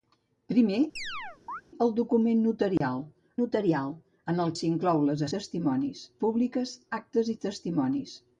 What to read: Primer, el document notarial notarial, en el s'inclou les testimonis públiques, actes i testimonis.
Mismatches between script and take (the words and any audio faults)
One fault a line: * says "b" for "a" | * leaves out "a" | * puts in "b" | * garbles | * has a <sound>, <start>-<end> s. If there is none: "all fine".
* has a chirp, 1.0-1.6 s
* has a dropout, 2.8-2.8 s